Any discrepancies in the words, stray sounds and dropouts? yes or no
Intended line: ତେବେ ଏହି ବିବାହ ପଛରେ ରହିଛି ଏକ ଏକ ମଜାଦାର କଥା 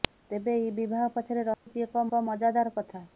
yes